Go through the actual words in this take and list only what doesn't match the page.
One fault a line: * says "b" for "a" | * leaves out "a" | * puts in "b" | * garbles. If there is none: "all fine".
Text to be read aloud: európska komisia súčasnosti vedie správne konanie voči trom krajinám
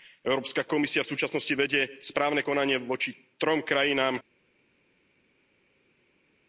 * puts in "v"